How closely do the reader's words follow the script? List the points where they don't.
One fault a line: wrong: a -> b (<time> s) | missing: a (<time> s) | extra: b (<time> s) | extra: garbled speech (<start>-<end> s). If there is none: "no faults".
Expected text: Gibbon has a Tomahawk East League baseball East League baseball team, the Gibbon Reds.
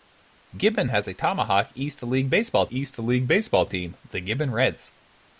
no faults